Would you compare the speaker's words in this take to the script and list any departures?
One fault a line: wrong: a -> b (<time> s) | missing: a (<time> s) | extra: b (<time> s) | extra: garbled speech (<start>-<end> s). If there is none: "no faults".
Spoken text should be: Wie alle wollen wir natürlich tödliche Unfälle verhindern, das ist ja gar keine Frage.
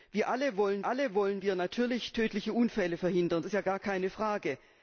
extra: alle wollen (0.8 s)
missing: das (3.4 s)